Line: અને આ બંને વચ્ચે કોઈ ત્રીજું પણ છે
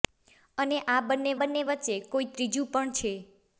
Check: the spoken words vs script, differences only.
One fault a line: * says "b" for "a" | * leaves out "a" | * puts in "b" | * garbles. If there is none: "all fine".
* puts in "બંને"